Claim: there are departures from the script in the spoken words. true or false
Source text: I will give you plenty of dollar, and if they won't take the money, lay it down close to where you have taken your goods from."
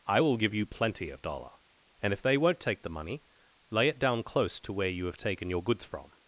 false